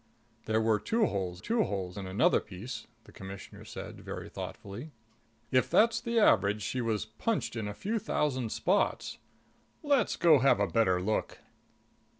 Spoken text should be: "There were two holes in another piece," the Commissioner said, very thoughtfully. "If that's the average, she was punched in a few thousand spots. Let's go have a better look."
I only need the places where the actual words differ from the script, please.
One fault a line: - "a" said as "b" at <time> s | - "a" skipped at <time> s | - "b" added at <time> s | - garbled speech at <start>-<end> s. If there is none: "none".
- "two holes" added at 1.4 s